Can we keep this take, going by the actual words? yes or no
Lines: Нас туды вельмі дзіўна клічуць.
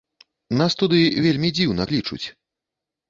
yes